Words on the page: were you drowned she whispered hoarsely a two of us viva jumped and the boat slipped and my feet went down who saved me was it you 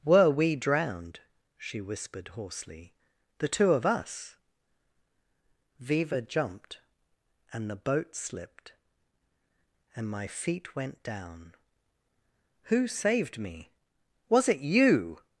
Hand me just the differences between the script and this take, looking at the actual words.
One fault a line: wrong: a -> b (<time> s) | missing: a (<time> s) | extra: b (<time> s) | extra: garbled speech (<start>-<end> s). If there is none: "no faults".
wrong: you -> we (0.3 s)
wrong: a -> the (3.4 s)